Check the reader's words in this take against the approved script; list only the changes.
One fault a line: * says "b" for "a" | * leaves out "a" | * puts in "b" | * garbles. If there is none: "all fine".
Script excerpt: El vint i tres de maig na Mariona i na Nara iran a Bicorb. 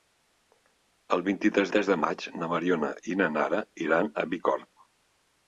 * puts in "tres"